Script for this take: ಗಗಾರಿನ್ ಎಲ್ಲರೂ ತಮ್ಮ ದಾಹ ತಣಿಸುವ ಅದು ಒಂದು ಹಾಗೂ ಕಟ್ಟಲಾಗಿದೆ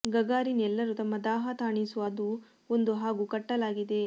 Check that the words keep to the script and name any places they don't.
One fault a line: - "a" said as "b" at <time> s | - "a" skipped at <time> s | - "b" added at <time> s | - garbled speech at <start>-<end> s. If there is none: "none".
none